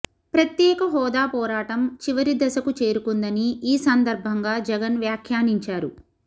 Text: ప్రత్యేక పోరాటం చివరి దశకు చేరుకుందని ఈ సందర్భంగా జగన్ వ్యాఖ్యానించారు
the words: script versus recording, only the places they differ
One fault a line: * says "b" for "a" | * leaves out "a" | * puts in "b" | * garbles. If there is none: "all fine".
* puts in "హోదా"